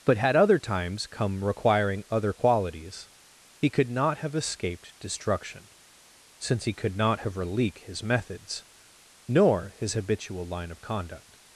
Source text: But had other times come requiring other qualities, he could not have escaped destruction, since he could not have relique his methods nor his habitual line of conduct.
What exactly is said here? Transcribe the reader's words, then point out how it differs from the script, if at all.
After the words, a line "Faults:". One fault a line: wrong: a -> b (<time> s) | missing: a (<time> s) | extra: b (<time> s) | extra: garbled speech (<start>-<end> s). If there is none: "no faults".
But had other times come requiring other qualities, he could not have escaped destruction, since he could not have relique his methods nor his habitual line of conduct.
Faults:
no faults